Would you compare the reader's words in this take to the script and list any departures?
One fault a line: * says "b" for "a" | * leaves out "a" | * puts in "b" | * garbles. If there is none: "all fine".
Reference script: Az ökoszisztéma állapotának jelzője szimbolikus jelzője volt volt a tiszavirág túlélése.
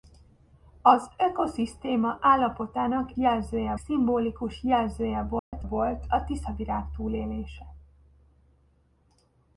all fine